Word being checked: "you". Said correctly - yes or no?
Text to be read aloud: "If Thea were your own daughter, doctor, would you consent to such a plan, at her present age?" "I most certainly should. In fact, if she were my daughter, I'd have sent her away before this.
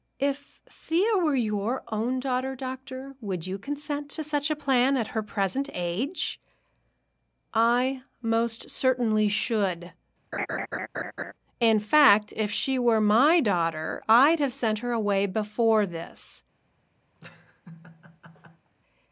yes